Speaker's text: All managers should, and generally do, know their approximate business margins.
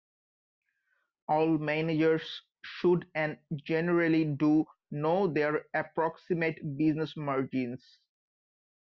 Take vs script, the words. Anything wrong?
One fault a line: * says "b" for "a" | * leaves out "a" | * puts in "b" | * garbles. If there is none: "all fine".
all fine